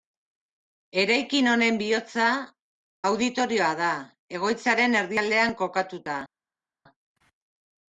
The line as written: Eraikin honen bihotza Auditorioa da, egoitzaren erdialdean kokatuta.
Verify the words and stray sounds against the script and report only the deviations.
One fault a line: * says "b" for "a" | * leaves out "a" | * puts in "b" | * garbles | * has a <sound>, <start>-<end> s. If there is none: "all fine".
all fine